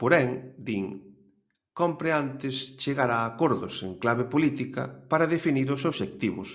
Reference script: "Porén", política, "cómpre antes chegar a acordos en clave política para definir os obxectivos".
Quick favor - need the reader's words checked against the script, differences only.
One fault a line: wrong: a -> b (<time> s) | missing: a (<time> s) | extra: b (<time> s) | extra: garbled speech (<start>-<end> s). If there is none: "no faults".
wrong: política -> din (0.7 s)